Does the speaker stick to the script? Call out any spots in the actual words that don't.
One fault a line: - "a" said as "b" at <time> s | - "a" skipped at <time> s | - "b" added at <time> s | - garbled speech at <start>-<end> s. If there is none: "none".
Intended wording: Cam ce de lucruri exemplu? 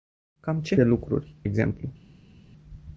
none